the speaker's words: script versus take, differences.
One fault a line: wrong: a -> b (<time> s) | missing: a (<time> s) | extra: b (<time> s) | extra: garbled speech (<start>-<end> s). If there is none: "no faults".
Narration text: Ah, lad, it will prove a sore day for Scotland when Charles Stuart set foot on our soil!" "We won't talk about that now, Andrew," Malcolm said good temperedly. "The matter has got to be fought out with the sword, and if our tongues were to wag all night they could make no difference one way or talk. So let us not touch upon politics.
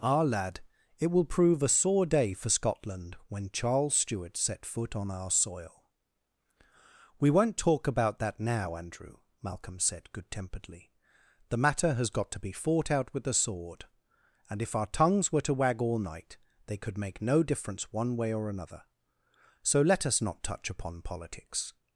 wrong: talk -> another (18.5 s)